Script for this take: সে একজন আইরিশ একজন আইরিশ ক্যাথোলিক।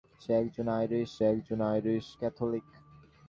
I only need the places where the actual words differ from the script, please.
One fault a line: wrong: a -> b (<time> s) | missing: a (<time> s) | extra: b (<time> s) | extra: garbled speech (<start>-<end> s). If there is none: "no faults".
no faults